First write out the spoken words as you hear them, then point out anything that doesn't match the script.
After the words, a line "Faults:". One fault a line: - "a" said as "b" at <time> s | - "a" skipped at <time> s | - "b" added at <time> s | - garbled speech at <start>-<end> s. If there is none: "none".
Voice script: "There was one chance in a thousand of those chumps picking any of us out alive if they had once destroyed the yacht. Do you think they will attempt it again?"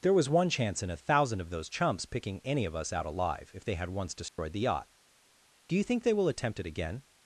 "There was one chance in a thousand of those chumps picking any of us out alive if they had once destroyed the yacht. Do you think they will attempt it again?"
Faults:
none